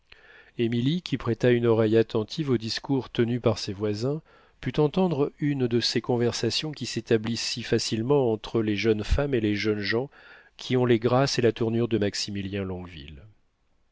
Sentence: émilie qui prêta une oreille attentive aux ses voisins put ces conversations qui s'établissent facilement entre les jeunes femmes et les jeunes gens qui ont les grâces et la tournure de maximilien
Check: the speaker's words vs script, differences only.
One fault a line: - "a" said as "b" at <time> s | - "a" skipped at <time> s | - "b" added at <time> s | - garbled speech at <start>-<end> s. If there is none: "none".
- "discours tenus par" added at 2.6 s
- "entendre une de" added at 4.8 s
- "si" added at 7.5 s